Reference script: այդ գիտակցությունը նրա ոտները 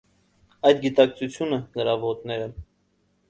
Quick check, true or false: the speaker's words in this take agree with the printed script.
true